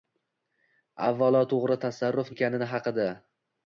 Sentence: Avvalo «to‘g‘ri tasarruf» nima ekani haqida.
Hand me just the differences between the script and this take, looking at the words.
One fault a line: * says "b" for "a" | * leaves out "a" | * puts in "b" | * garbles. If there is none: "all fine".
* leaves out "nima"